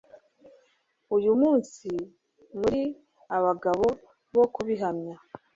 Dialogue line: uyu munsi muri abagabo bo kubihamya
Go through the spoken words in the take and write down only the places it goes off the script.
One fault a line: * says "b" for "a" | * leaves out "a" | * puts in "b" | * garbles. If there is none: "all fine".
all fine